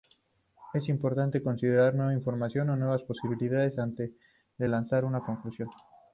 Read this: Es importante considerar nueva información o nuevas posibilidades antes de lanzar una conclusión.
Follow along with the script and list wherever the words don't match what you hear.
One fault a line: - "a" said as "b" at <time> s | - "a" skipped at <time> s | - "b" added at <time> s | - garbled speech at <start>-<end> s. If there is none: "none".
none